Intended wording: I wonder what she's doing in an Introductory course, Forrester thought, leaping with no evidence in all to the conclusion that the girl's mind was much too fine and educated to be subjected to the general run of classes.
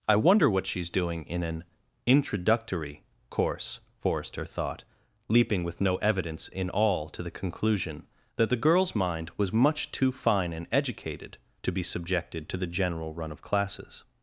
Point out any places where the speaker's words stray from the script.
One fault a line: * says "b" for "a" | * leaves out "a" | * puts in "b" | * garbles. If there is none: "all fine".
all fine